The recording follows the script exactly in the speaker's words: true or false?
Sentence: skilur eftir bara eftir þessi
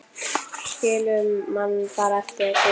false